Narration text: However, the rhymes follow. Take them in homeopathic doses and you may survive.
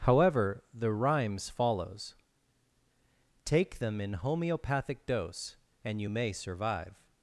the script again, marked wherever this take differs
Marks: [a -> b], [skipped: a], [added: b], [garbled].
However, the rhymes [follow. -> follows] Take them in homeopathic [doses -> dose] and you may survive.